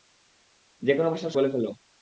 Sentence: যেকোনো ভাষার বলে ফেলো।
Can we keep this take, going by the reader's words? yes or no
yes